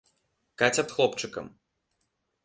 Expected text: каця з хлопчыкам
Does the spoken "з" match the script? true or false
true